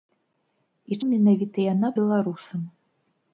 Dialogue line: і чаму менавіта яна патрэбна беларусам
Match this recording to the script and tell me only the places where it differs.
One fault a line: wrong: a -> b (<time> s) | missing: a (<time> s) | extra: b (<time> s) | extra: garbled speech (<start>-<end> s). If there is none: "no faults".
missing: чаму (1.0 s)
missing: патрэбна (1.9 s)